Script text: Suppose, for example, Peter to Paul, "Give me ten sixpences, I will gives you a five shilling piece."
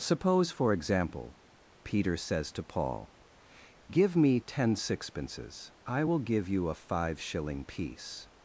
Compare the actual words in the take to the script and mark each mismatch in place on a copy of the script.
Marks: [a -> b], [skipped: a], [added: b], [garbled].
Suppose, for example, Peter [added: says] to Paul, "Give me ten sixpences, I will [gives -> give] you a five shilling piece."